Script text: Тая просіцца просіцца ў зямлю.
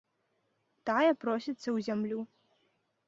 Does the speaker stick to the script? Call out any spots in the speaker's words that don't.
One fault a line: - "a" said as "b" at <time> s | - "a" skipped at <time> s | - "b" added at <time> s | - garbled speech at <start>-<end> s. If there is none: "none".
- "просіцца" skipped at 1.6 s